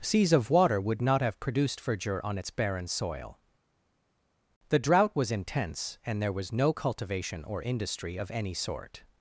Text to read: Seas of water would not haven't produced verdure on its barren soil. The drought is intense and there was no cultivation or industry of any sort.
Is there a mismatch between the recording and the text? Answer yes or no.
yes